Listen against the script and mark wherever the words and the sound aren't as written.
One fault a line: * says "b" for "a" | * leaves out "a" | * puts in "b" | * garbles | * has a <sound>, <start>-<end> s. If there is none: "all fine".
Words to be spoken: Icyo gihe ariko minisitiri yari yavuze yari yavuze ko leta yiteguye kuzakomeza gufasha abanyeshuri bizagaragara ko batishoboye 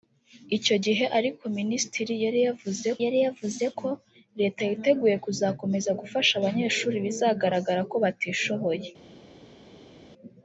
all fine